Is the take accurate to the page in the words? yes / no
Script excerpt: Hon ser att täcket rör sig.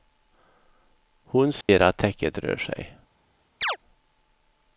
yes